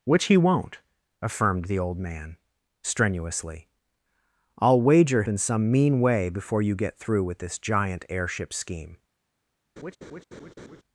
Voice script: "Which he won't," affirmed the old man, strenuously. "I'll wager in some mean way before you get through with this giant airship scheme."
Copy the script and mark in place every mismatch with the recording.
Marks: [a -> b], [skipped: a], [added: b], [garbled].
"Which he won't," affirmed the old man, strenuously. "I'll wager in some mean way before you get through with this giant airship scheme."